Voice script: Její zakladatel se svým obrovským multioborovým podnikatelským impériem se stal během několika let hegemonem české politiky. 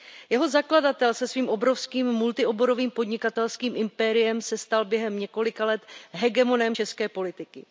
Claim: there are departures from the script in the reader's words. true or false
true